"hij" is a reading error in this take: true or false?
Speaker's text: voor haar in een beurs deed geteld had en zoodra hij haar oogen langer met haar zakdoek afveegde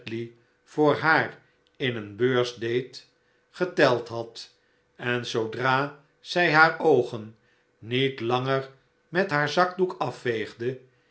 true